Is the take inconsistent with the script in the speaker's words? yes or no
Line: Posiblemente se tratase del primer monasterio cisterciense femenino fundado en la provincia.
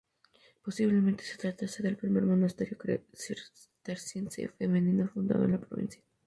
no